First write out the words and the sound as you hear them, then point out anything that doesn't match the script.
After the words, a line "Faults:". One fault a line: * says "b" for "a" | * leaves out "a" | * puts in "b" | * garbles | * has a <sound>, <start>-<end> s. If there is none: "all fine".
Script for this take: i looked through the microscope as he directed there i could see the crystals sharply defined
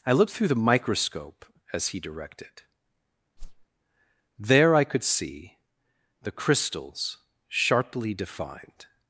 i looked through the microscope as he directed there i could see the crystals sharply defined
Faults:
* has a whoosh, 3.4-3.7 s